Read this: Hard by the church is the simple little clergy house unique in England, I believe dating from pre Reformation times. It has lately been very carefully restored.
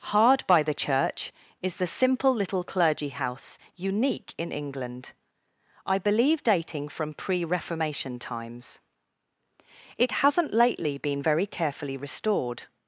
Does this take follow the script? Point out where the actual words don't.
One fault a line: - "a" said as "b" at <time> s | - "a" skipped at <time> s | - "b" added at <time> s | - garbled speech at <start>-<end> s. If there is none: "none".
- "has" said as "hasn't" at 10.2 s